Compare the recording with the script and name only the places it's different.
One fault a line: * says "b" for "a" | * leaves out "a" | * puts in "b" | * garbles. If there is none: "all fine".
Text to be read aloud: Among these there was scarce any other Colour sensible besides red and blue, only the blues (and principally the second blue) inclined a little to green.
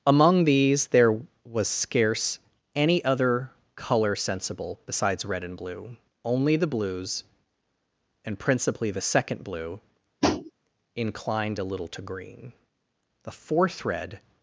* puts in "The fourth red"